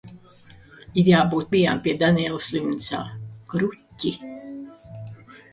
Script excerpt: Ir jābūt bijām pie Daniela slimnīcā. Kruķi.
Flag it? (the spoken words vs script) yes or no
no